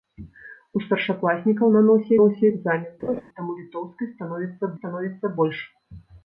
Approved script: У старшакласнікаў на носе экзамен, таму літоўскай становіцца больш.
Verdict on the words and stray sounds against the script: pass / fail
fail